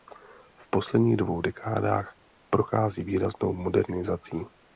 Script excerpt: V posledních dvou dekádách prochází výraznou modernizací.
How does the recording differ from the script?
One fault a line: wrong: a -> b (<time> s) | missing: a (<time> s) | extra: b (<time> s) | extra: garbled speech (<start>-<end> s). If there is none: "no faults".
no faults